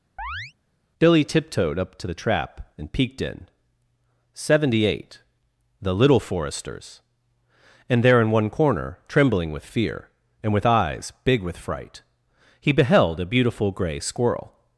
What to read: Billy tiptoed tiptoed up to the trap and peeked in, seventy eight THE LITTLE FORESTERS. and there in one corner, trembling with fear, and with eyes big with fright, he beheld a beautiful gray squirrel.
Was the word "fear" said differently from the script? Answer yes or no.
no